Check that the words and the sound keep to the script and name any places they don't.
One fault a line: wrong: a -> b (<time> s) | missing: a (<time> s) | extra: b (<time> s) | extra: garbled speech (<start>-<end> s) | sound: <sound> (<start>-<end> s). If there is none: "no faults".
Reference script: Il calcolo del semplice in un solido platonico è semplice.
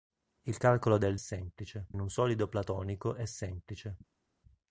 no faults